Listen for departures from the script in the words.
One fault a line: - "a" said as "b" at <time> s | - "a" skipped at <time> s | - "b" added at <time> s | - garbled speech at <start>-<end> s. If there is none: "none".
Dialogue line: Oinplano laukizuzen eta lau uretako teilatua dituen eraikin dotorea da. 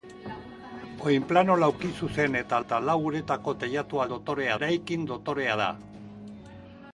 - "eta" added at 2.6 s
- "dituen" said as "dotorea" at 4.1 s